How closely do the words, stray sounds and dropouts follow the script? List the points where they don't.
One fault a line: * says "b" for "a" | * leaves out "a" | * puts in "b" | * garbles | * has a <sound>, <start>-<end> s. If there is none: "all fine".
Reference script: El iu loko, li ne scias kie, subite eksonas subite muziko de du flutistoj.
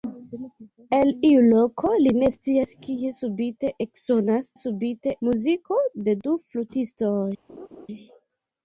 * has a laugh, 7.5-7.9 s